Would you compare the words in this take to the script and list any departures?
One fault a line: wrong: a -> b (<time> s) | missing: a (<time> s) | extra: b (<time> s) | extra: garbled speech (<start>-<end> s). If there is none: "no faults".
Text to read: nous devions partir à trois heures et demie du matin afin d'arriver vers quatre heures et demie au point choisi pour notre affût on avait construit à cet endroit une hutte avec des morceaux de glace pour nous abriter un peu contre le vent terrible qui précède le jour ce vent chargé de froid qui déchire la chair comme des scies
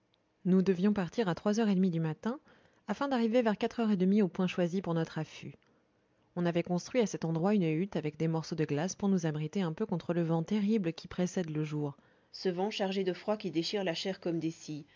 no faults